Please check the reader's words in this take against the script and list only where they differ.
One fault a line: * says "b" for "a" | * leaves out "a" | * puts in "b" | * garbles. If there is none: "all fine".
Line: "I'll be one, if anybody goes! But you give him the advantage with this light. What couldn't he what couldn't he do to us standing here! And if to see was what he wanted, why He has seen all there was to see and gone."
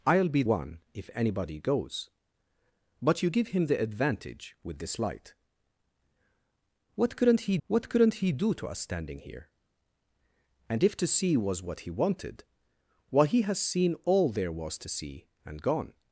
all fine